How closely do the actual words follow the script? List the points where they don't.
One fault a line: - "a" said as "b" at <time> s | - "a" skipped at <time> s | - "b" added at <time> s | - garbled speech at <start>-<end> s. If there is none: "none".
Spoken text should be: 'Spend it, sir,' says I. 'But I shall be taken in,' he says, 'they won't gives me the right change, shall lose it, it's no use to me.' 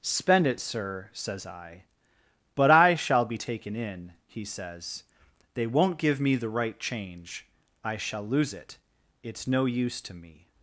- "gives" said as "give" at 6.0 s
- "I" added at 7.8 s